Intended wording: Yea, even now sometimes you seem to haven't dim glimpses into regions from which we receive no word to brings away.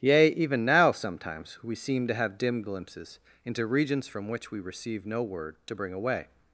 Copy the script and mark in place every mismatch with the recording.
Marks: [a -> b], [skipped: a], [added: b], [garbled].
Yea, even now sometimes [you -> we] seem to [haven't -> have] dim glimpses into regions from which we receive no word to [brings -> bring] away.